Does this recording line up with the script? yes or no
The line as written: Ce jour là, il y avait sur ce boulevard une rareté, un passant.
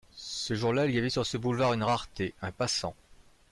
yes